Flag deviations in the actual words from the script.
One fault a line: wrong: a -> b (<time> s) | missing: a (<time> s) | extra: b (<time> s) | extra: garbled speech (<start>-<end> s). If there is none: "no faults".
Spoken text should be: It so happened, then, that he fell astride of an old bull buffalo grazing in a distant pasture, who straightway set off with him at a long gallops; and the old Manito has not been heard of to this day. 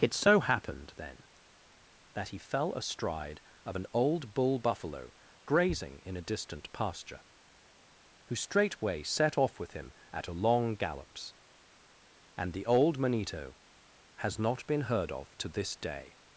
no faults